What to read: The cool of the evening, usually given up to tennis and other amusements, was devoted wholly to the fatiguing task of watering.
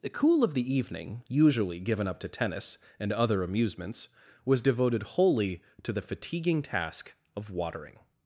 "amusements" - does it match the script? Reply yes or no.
yes